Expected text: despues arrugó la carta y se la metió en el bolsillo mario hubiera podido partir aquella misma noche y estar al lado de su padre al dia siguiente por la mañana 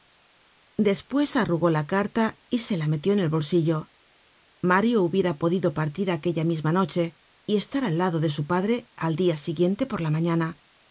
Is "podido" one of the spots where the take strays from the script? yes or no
no